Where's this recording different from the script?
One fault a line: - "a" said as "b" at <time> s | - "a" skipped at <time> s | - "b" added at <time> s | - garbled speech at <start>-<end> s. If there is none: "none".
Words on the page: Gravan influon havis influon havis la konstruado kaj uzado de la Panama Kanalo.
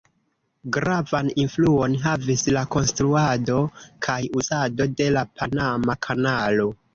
- "influon havis" skipped at 2.5 s